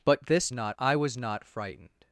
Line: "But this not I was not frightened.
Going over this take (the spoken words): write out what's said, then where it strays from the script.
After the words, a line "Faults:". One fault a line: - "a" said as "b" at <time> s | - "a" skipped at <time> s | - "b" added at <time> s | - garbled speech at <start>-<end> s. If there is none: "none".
"But this not I was not frightened.
Faults:
none